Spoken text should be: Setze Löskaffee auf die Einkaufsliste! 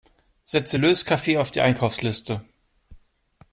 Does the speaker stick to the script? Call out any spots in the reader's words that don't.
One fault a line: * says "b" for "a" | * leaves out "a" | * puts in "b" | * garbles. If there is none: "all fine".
all fine